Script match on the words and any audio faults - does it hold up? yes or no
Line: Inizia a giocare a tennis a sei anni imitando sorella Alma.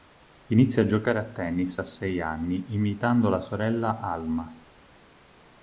no